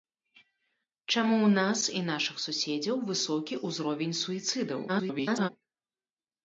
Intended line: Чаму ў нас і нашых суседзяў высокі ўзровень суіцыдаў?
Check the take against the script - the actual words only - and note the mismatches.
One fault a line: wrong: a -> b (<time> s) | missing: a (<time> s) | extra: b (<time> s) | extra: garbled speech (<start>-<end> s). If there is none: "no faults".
extra: garbled speech (4.9-5.5 s)